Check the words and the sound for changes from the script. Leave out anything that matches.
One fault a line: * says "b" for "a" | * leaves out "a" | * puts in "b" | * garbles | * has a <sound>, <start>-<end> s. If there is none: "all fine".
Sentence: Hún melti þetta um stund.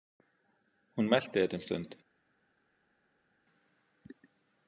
all fine